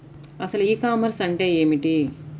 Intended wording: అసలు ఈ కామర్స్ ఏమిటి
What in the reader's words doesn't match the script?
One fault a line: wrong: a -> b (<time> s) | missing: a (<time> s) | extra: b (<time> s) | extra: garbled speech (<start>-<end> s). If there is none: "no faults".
extra: అంటే (1.2 s)